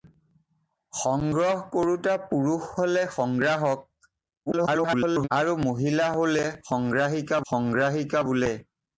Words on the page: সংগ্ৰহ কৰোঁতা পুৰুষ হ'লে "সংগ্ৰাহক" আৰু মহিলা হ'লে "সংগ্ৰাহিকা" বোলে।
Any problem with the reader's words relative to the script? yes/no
yes